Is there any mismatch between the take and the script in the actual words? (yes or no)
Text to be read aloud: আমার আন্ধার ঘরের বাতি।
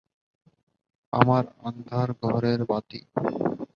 no